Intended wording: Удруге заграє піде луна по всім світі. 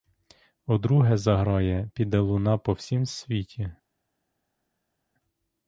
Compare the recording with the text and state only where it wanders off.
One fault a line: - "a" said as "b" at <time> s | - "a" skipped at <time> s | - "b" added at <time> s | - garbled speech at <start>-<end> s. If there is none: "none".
none